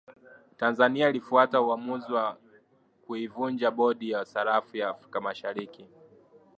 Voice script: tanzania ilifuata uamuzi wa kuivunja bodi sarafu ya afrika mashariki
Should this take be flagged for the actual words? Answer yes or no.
yes